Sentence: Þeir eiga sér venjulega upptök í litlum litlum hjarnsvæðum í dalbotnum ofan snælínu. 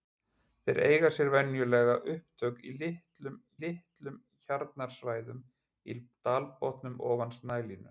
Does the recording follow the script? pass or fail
pass